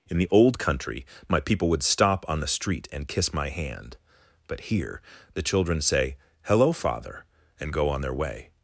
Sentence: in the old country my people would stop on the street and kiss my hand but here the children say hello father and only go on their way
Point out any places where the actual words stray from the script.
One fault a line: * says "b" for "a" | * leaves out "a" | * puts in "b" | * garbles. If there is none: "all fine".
* leaves out "only"